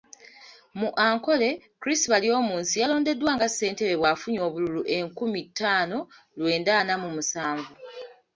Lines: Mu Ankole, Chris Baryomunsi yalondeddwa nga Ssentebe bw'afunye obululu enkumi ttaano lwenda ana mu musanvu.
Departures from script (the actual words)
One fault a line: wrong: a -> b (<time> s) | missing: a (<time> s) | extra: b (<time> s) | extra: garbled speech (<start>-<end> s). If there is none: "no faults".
no faults